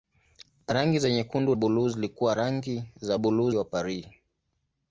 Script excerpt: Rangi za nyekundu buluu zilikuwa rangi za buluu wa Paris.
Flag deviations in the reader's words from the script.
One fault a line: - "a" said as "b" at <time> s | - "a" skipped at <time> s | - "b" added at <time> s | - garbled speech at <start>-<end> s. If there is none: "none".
none